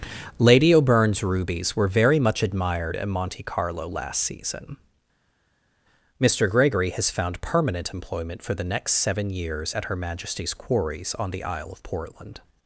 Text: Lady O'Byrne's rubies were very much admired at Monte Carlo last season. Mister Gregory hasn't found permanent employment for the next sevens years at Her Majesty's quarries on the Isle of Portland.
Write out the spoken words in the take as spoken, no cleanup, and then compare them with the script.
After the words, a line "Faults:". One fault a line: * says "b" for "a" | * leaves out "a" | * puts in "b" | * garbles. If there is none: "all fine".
Lady O'Byrne's rubies were very much admired at Monte Carlo last season. Mister Gregory has found permanent employment for the next seven years at Her Majesty's quarries on the Isle of Portland.
Faults:
* says "has" for "hasn't"
* says "seven" for "sevens"